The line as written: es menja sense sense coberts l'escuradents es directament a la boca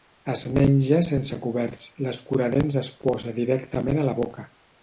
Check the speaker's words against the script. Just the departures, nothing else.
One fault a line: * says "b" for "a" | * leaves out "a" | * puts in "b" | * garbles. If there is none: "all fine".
* leaves out "sense"
* puts in "posa"